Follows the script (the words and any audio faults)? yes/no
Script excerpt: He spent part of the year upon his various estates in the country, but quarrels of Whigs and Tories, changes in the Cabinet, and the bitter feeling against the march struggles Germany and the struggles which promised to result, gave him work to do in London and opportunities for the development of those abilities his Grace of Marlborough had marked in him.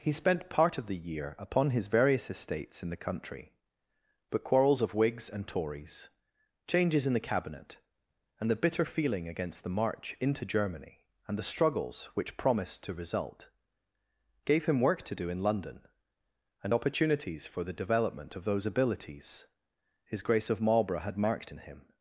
no